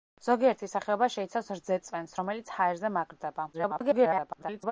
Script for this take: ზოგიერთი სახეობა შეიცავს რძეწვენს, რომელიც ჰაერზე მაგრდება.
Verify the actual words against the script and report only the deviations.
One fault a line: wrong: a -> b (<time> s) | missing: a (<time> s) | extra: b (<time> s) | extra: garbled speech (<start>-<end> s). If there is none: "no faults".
extra: garbled speech (3.5-4.7 s)